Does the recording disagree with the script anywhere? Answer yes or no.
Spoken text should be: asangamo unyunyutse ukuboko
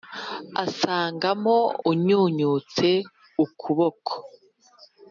no